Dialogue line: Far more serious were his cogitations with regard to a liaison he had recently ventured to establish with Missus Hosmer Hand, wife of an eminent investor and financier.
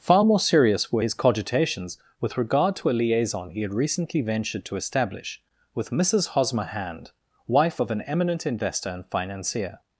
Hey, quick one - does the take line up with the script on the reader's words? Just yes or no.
yes